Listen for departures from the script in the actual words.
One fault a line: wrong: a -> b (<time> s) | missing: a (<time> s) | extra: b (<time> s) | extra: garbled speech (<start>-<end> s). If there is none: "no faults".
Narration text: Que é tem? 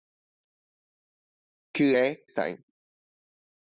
no faults